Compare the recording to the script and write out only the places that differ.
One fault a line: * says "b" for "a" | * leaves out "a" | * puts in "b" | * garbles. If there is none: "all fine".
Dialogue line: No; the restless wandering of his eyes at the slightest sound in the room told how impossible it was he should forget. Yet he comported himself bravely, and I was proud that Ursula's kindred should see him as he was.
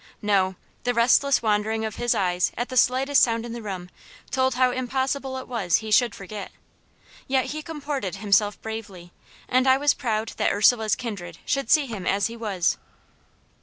all fine